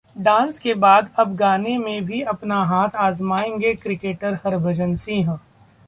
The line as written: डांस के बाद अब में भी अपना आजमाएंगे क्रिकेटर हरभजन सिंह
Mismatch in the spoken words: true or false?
true